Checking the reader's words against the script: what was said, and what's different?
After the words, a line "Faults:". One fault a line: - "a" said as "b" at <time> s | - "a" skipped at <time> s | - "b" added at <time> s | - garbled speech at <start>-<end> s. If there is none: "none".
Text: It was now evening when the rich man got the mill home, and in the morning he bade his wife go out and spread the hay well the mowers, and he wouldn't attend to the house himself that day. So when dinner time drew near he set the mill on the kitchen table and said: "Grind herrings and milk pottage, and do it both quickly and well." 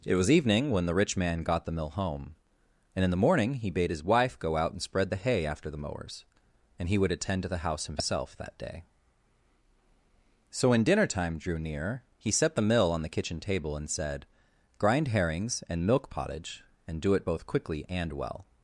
It was evening when the rich man got the mill home, and in the morning he bade his wife go out and spread the hay after the mowers, and he would attend to the house himself that day. So when dinner time drew near he set the mill on the kitchen table and said: "Grind herrings and milk pottage, and do it both quickly and well."
Faults:
- "now" skipped at 0.3 s
- "well" said as "after" at 5.5 s
- "wouldn't" said as "would" at 7.0 s